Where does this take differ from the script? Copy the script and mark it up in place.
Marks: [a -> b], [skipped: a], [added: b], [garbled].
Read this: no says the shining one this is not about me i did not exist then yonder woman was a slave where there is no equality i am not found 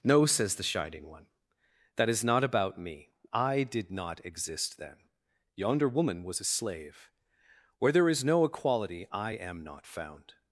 no says the shining one [this -> that] is not about me i did not exist then yonder woman was a slave where there is no equality i am not found